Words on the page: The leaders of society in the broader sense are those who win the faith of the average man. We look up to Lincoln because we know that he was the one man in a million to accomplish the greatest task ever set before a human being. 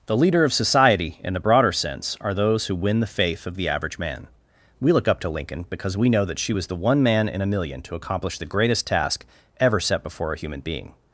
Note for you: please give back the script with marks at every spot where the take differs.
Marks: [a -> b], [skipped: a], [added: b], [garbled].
The [leaders -> leader] of society in the broader sense are those who win the faith of the average man. We look up to Lincoln because we know that [he -> she] was the one man in a million to accomplish the greatest task ever set before a human being.